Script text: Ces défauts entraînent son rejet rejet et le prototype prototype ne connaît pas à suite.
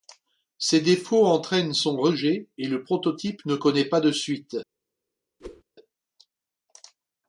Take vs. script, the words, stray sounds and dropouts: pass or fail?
fail